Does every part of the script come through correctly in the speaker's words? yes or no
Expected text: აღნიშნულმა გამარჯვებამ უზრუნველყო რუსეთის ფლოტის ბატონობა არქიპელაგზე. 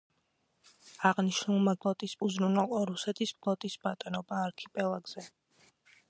no